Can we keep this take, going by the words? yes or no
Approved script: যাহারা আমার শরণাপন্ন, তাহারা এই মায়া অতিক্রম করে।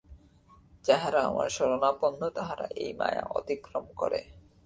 yes